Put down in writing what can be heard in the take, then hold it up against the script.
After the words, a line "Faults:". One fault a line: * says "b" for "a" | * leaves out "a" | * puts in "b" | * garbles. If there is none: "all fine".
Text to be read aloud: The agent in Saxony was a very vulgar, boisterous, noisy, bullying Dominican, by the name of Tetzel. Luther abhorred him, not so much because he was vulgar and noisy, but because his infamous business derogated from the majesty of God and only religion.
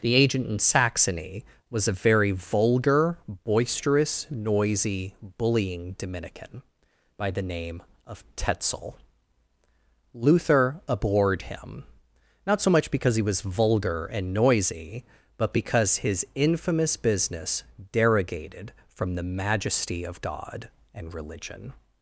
The agent in Saxony was a very vulgar, boisterous, noisy, bullying Dominican, by the name of Tetzel. Luther abhorred him, not so much because he was vulgar and noisy, but because his infamous business derogated from the majesty of God and religion.
Faults:
* leaves out "only"